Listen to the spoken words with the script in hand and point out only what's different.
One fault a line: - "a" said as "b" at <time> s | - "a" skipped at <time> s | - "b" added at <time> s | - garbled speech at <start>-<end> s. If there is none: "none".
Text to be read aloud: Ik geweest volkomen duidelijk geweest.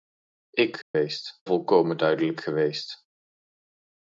none